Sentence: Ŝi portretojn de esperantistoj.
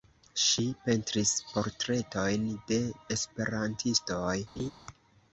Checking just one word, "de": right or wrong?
right